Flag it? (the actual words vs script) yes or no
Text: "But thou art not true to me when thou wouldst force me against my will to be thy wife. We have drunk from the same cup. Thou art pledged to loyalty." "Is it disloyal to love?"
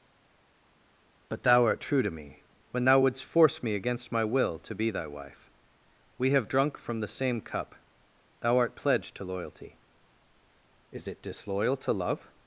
yes